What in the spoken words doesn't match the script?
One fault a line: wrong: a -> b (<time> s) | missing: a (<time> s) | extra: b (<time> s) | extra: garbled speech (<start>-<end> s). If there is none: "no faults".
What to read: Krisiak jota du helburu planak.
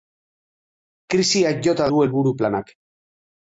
no faults